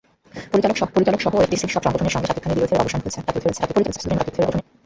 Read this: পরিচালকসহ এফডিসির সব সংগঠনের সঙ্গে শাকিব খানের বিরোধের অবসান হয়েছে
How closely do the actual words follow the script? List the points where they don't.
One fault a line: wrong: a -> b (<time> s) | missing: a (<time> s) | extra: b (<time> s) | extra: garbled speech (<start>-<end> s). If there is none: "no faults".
extra: পরিচালকসহ (0.9 s)
extra: garbled speech (3.3-4.6 s)